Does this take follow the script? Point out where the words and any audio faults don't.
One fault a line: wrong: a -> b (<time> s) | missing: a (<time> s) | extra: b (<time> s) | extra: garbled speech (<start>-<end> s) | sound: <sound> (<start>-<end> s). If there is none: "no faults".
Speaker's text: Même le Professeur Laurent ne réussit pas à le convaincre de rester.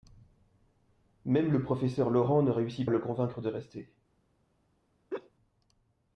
missing: pas (2.9 s)
sound: laugh (5.1-5.3 s)